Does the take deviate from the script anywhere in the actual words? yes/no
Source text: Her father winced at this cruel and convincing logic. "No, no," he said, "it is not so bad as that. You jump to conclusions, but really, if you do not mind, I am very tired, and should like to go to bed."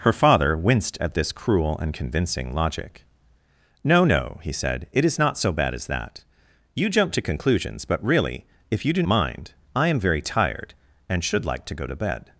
yes